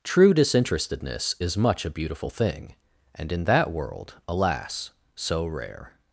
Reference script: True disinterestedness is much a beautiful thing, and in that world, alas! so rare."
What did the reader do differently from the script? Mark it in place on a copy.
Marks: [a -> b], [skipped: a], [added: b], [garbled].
True disinterestedness is much a beautiful thing, and in that world, alas! so rare."